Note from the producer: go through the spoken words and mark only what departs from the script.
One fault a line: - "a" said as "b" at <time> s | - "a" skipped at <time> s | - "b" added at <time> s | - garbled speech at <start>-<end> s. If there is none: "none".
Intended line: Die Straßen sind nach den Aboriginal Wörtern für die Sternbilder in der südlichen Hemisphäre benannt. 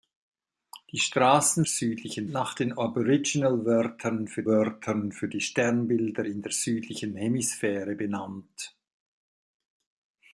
- "sind" said as "südlichen" at 1.6 s
- "Wörtern für" added at 4.5 s